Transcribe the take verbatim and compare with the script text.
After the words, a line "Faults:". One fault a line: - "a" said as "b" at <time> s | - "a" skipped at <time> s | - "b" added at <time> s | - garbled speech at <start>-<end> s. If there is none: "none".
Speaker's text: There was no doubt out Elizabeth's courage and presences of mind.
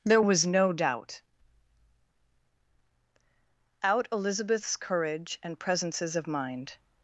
There was no doubt out Elizabeth's courage and presences of mind.
Faults:
none